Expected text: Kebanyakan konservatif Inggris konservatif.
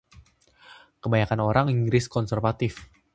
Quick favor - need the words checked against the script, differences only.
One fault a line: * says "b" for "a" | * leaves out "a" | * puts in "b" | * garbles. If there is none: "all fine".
* says "orang" for "konservatif"